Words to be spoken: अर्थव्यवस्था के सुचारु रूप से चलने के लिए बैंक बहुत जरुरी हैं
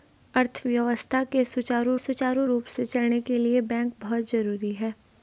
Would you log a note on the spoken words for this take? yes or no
yes